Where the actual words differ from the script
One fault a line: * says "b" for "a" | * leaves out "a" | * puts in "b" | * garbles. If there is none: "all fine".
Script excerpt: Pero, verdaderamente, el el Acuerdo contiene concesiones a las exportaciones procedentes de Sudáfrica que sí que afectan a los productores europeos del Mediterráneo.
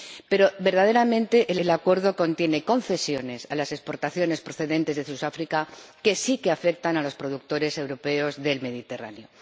all fine